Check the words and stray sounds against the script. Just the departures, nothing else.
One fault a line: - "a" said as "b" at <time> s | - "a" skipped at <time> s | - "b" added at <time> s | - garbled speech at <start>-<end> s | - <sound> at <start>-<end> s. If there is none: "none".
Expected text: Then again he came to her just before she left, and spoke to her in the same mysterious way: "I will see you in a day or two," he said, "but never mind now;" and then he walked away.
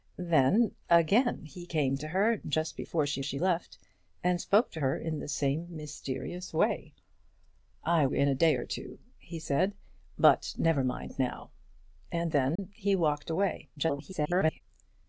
- "she" added at 3.2 s
- "will see you" skipped at 8.1 s
- dropout at 12.6-12.6 s
- garbled speech at 13.8-14.6 s